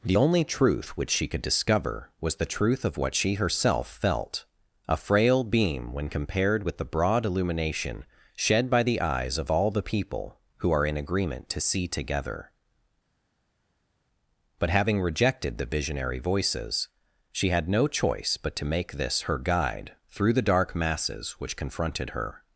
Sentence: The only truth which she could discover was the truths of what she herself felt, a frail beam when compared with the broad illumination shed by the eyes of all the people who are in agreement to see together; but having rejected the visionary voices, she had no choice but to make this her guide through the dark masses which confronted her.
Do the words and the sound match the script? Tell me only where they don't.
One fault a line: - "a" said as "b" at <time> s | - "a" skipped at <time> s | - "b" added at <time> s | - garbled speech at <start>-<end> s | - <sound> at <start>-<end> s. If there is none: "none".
- "truths" said as "truth" at 2.5 s